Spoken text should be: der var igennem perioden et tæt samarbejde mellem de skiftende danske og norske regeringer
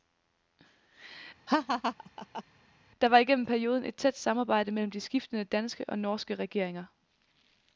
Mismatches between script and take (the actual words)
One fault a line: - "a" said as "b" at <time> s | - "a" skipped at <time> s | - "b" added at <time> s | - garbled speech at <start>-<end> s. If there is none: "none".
none